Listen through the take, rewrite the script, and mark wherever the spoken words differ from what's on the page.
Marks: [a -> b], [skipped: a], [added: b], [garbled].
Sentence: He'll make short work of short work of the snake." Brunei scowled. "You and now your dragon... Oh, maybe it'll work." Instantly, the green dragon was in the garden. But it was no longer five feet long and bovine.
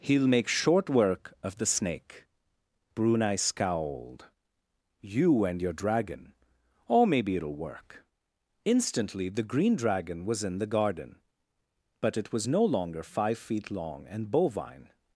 He'll make short work of [skipped: short work of] the snake." Brunei scowled. "You and [skipped: now] your dragon... Oh, maybe it'll work." Instantly, the green dragon was in the garden. But it was no longer five feet long and bovine.